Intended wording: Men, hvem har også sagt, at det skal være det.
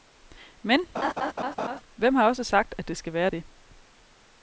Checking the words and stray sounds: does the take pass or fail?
fail